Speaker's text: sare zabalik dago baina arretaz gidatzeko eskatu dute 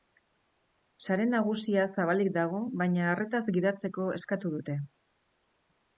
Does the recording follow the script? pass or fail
fail